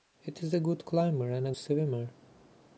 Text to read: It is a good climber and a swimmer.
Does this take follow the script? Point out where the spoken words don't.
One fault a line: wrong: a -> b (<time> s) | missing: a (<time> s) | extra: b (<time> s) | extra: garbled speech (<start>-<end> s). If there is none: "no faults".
no faults